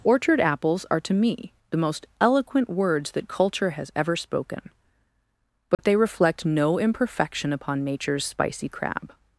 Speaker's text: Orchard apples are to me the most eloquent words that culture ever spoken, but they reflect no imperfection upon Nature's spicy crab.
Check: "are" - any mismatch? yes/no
no